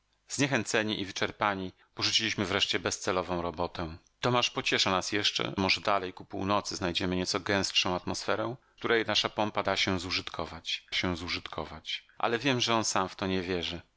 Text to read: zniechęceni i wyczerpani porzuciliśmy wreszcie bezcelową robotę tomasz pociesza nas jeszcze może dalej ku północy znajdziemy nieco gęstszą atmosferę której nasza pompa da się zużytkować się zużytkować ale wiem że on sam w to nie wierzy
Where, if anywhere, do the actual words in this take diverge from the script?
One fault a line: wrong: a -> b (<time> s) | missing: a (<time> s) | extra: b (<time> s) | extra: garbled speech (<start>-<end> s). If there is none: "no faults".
no faults